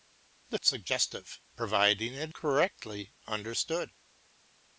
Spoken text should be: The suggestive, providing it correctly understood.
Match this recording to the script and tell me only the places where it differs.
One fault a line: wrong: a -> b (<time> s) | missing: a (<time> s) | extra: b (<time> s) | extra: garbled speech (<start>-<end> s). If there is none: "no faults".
no faults